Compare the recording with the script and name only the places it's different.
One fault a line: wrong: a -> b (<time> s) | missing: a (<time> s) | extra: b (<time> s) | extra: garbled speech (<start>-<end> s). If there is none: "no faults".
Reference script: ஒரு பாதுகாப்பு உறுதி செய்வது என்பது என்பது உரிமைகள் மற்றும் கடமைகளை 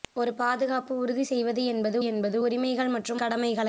no faults